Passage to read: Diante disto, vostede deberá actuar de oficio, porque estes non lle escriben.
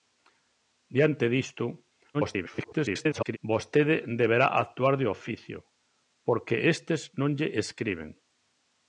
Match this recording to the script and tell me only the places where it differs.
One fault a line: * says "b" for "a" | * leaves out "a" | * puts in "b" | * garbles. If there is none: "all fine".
* garbles